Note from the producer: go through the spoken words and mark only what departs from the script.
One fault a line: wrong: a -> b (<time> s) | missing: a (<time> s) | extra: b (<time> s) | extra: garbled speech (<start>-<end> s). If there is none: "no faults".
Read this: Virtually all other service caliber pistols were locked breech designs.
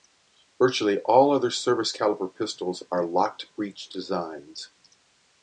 wrong: were -> are (2.9 s)